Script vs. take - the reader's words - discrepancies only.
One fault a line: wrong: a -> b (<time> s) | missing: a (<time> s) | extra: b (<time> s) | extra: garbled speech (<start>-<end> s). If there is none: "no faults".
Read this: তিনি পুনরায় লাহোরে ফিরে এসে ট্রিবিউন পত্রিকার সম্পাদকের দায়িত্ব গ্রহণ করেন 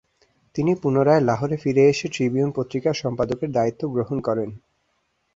no faults